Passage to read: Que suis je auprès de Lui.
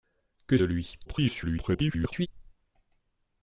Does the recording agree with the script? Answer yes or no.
no